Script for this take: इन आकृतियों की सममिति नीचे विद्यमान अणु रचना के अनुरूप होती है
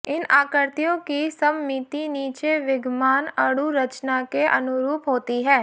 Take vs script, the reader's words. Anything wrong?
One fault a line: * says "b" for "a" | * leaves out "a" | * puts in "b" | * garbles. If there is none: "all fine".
all fine